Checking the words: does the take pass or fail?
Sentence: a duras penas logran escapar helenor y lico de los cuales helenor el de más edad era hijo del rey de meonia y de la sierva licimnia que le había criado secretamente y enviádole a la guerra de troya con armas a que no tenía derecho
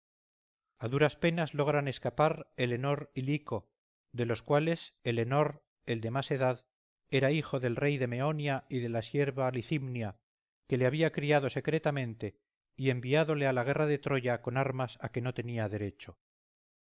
pass